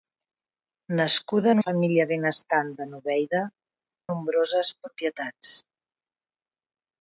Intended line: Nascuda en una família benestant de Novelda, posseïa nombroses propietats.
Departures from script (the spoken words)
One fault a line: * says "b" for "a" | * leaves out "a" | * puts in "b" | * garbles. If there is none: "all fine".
* leaves out "una"
* leaves out "posseïa"